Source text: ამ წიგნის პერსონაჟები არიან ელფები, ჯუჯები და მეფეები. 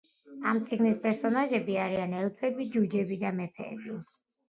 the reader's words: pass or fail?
pass